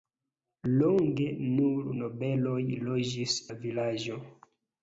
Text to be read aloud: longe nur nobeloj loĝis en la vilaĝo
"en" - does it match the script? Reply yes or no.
no